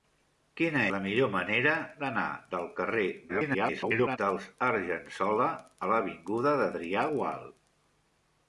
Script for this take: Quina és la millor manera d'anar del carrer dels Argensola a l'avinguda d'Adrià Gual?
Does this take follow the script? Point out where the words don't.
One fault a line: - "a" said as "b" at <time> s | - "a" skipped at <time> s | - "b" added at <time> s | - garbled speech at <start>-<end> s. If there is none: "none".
- "és" skipped at 0.8 s
- garbled speech at 3.3-4.2 s